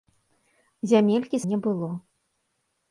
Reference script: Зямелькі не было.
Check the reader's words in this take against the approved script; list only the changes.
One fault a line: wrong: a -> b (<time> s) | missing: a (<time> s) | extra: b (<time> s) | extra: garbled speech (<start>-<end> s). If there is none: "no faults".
no faults